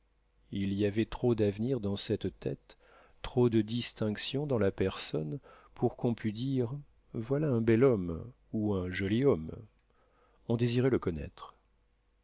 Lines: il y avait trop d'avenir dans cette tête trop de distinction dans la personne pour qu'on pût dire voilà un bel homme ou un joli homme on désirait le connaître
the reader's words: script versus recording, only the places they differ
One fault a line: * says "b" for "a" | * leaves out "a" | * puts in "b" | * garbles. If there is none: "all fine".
all fine